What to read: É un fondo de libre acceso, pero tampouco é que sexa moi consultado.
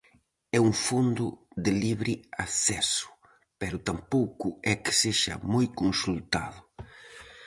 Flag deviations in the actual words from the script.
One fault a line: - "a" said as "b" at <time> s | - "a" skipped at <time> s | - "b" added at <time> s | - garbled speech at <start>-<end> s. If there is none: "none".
none